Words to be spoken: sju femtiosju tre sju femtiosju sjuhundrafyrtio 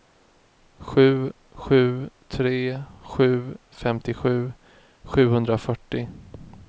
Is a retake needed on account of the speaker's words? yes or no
yes